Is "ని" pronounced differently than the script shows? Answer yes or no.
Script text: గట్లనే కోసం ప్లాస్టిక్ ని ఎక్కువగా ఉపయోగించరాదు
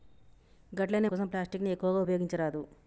no